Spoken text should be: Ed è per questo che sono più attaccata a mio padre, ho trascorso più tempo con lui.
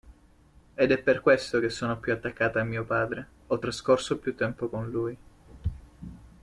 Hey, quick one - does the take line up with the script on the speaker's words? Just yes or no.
yes